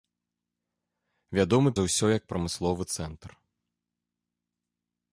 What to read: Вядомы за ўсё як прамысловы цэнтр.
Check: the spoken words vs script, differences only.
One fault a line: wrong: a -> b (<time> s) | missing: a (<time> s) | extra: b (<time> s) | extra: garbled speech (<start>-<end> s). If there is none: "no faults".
no faults